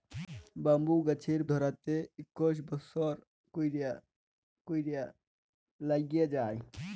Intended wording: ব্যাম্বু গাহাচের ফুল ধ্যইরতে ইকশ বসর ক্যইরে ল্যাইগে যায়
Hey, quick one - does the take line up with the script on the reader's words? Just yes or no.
no